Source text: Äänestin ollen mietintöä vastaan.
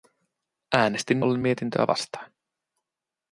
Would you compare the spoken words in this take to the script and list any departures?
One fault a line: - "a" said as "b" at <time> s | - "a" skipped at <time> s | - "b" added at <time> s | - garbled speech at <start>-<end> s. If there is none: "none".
none